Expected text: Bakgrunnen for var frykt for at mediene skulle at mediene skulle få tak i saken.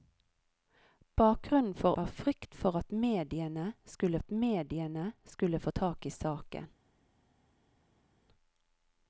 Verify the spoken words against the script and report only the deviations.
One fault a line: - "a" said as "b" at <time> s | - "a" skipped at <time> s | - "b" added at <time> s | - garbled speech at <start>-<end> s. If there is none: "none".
none